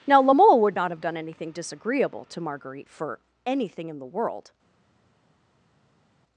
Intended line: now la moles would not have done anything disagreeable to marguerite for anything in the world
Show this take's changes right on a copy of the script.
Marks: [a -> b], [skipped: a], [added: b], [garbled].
now la [moles -> mole] would not have done anything disagreeable to marguerite for anything in the world